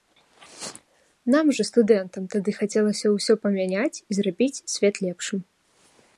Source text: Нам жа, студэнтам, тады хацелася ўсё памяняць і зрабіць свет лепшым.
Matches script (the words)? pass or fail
pass